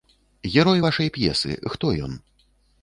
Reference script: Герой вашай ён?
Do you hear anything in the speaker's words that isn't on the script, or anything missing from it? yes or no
yes